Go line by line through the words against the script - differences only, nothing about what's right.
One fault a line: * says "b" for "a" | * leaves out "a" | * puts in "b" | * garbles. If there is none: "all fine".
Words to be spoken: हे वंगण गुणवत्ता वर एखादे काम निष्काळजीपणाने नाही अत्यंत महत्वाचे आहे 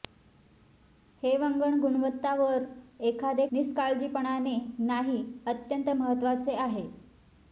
* leaves out "काम"